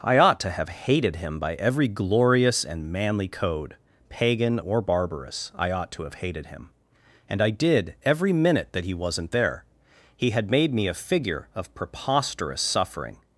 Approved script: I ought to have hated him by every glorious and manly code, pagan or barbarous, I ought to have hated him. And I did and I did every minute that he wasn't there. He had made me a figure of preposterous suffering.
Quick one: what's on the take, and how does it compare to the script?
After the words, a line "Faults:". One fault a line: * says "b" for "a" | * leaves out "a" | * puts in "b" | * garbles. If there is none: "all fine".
I ought to have hated him by every glorious and manly code, pagan or barbarous, I ought to have hated him. And I did every minute that he wasn't there. He had made me a figure of preposterous suffering.
Faults:
* leaves out "and I did"